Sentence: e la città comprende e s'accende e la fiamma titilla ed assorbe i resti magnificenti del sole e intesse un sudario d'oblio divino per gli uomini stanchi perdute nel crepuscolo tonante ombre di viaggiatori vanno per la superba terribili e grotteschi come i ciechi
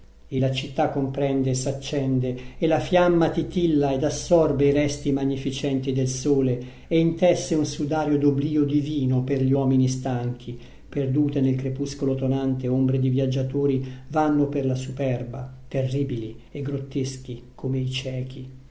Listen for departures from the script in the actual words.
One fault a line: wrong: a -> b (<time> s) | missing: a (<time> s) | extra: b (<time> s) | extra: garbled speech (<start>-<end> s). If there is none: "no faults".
no faults